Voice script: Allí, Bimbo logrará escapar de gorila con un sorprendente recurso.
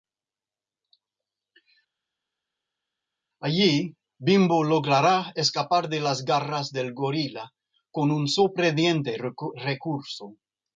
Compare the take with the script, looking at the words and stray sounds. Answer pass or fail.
fail